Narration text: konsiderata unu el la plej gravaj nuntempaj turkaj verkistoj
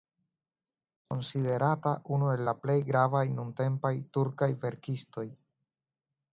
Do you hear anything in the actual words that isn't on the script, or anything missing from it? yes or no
no